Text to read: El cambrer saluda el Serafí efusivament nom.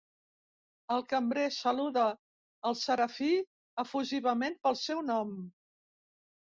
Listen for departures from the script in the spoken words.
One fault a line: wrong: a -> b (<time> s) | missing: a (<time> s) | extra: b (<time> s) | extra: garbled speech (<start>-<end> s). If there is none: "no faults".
extra: pel seu (4.7 s)